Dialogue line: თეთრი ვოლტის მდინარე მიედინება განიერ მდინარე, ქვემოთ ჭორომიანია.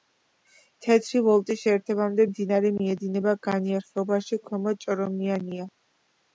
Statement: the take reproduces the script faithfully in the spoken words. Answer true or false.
false